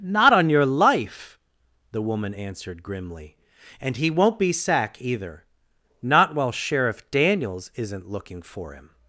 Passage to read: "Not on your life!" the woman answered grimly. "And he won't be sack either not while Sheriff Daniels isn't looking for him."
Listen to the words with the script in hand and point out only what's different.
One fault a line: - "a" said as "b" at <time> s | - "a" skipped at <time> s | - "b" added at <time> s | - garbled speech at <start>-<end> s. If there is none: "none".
none